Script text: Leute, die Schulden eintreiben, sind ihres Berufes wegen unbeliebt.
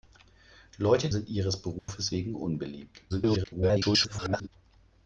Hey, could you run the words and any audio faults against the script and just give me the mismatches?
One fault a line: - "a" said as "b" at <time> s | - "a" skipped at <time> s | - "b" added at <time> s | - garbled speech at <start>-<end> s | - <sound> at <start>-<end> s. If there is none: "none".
- "die Schulden eintreiben" skipped at 1.1 s
- dropout at 1.8-1.9 s
- garbled speech at 3.1-4.5 s